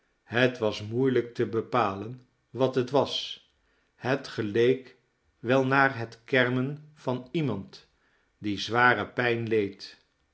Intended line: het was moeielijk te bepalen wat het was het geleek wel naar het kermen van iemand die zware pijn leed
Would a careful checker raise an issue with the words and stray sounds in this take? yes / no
no